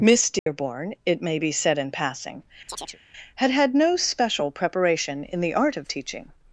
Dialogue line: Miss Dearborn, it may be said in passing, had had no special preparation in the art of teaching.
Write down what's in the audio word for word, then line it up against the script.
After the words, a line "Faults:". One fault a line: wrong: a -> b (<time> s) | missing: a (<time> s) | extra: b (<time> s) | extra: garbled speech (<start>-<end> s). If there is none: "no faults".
Miss Dearborn, it may be said in passing, had had no special preparation in the art of teaching.
Faults:
no faults